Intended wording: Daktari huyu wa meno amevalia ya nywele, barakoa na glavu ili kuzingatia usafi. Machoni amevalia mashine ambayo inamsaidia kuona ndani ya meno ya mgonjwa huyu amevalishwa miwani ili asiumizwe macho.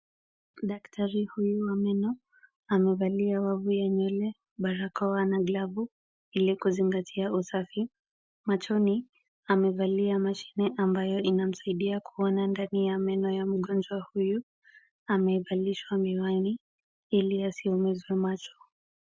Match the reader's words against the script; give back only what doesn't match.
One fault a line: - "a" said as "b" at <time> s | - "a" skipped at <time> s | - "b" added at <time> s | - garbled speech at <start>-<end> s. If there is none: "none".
- "wavu" added at 3.4 s